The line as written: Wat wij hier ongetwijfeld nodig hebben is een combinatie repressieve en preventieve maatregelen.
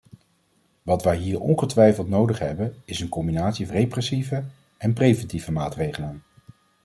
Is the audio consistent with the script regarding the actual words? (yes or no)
yes